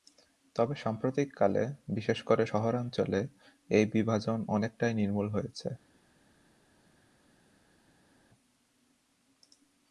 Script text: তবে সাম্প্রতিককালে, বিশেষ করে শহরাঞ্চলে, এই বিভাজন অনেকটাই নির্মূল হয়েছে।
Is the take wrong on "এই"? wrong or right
right